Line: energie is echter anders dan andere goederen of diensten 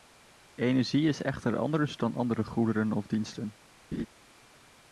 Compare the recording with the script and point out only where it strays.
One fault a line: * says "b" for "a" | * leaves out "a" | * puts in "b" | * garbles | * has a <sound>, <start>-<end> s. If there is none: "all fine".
* has a laugh, 3.9-4.1 s